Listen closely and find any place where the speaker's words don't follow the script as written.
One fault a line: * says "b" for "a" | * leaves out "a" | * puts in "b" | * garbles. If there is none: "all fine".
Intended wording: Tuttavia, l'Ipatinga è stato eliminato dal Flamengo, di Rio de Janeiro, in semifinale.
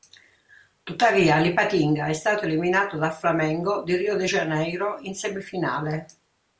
all fine